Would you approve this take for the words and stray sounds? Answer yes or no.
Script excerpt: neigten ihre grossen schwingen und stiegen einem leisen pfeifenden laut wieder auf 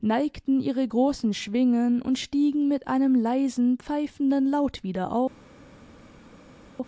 no